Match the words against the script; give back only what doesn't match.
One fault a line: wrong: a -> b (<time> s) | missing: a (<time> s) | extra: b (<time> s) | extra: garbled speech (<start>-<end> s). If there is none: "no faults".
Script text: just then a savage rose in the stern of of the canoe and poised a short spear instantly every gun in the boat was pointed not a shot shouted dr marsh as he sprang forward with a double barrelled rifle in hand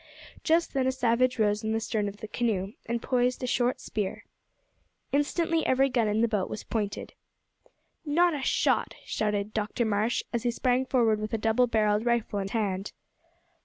no faults